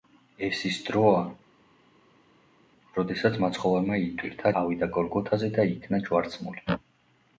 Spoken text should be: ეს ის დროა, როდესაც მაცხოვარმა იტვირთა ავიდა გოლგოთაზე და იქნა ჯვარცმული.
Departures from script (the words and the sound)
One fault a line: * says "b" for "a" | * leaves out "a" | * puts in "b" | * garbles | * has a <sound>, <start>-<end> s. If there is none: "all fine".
all fine